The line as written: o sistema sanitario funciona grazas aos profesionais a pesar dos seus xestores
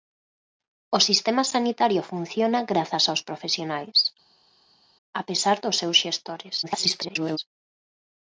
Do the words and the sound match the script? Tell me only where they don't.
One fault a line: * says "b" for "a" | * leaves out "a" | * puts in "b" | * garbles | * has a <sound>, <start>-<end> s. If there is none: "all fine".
* garbles